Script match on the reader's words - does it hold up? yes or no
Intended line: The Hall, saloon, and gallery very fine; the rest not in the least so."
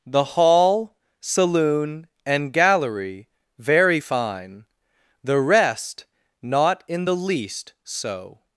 yes